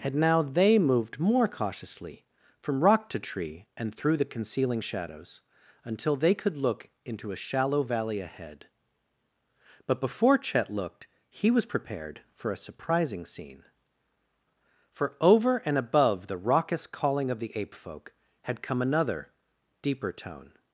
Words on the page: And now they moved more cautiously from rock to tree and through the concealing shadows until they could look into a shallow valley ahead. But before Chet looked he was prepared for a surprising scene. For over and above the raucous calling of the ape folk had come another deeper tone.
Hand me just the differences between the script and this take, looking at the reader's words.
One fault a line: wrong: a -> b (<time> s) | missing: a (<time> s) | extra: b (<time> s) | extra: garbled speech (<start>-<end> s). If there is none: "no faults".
wrong: And -> Had (0.0 s)